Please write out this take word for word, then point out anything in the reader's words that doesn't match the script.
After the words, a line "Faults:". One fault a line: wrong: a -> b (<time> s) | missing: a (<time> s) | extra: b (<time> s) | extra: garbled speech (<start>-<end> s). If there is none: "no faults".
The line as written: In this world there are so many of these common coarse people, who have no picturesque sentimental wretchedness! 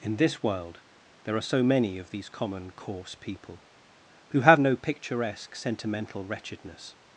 In this world there are so many of these common coarse people, who have no picturesque sentimental wretchedness!
Faults:
no faults